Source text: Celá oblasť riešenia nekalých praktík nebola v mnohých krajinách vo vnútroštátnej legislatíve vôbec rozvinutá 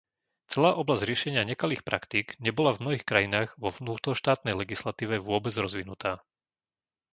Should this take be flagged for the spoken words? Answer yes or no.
no